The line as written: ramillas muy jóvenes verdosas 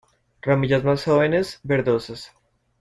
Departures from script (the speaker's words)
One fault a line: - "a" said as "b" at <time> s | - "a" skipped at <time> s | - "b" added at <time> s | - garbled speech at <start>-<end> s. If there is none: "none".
- "muy" said as "más" at 0.8 s